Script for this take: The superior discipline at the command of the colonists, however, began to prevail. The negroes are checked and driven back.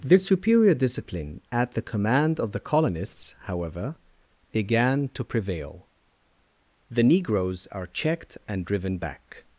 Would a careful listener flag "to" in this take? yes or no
no